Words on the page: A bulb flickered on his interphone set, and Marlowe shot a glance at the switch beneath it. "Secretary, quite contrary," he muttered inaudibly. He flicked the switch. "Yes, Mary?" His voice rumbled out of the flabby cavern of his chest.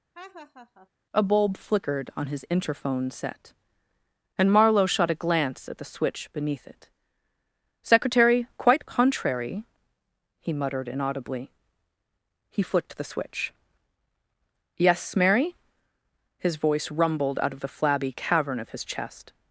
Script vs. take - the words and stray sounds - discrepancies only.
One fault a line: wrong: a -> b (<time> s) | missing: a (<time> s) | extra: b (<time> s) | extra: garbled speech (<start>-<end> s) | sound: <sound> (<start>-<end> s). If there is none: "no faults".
sound: laugh (0.1-0.9 s)